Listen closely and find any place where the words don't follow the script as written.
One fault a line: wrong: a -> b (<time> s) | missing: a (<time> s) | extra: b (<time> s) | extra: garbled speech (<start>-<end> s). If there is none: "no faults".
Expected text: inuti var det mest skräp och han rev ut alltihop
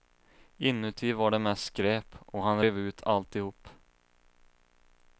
no faults